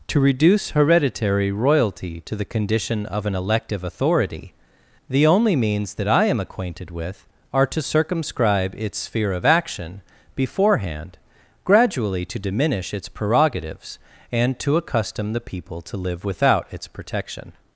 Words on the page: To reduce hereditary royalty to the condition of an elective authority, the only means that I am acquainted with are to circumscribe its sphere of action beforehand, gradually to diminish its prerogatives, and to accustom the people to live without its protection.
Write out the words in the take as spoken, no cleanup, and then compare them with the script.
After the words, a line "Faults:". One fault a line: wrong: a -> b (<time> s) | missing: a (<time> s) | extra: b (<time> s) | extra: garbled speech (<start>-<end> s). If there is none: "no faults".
To reduce hereditary royalty to the condition of an elective authority, the only means that I am acquainted with are to circumscribe its sphere of action beforehand, gradually to diminish its prerogatives, and to accustom the people to live without its protection.
Faults:
no faults